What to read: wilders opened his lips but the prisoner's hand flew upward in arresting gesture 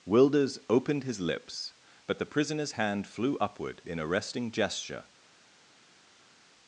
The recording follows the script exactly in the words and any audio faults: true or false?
true